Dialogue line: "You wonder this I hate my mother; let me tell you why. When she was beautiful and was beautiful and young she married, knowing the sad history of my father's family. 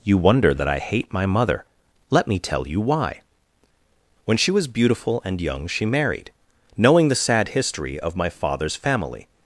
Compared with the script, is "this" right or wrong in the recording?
wrong